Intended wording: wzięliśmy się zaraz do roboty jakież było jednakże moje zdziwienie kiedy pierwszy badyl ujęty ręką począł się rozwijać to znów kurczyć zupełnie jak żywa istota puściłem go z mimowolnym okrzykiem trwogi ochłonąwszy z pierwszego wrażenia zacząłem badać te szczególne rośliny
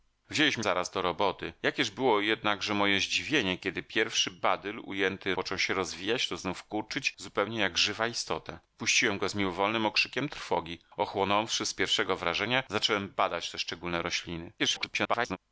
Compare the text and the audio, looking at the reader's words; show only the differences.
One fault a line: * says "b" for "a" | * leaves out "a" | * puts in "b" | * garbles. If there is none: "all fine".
* leaves out "się"
* leaves out "ręką"
* garbles